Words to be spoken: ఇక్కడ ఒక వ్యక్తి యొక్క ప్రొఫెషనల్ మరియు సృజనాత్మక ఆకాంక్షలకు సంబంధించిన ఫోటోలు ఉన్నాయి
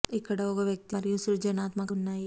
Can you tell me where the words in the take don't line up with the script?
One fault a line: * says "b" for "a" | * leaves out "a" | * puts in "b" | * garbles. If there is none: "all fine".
* leaves out "యొక్క ప్రొఫెషనల్"
* leaves out "ఆకాంక్షలకు సంబంధించిన ఫోటోలు"